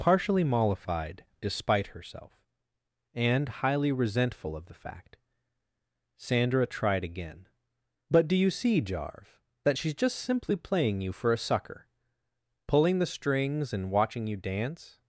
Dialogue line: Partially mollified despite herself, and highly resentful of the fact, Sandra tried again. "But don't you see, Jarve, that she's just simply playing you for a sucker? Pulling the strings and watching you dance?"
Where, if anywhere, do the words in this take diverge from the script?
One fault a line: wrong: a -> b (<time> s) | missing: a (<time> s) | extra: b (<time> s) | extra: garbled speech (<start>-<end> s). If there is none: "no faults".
wrong: don't -> do (8.3 s)